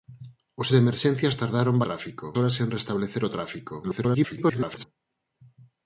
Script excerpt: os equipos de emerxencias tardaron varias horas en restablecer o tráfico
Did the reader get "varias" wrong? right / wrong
wrong